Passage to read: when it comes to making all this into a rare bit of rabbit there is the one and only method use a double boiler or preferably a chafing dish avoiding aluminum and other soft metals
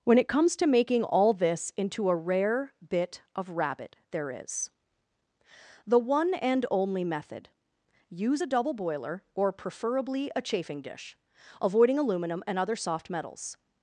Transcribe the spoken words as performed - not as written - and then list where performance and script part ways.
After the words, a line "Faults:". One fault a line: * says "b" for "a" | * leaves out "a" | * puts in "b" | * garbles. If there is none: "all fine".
when it comes to making all this into a rare bit of rabbit there is the one and only method use a double boiler or preferably a chafing dish avoiding aluminum and other soft metals
Faults:
all fine